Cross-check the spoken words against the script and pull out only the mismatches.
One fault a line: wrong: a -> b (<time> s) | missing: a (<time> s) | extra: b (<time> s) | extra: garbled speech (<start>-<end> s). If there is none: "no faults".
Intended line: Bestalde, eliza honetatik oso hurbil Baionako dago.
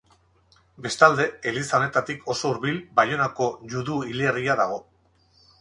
extra: judu hilerria (3.8 s)